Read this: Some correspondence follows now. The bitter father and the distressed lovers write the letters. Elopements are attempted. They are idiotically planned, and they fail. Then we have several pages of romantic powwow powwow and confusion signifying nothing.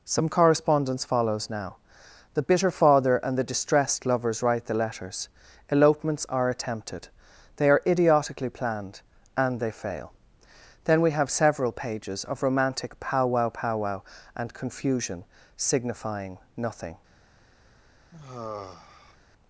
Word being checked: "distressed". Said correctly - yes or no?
yes